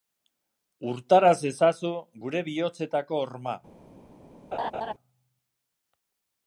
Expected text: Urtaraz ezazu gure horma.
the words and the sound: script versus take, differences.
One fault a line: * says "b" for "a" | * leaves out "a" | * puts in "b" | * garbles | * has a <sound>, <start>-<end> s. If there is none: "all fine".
* puts in "bihotzetako"
* has a laugh, 4.5-4.9 s